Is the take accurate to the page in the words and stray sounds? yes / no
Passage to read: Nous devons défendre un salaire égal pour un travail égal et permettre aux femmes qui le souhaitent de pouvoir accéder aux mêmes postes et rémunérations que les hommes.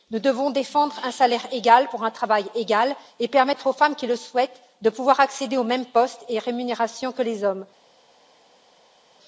yes